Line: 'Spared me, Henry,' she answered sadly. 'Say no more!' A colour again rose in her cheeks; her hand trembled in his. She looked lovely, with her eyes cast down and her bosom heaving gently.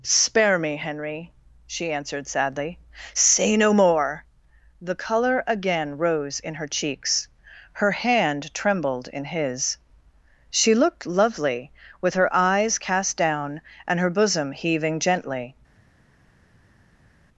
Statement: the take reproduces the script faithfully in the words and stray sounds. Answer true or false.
false